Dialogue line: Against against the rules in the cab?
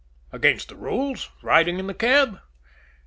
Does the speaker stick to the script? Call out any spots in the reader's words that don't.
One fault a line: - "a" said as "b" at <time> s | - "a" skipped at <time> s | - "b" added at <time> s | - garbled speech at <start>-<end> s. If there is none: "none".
- "against" skipped at 0.7 s
- "riding" added at 1.4 s